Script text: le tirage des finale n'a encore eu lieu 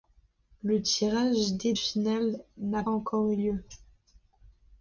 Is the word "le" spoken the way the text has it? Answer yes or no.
yes